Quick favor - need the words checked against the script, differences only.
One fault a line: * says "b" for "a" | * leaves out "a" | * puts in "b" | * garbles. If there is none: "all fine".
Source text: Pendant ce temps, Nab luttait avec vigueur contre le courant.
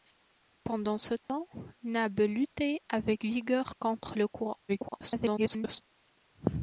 * garbles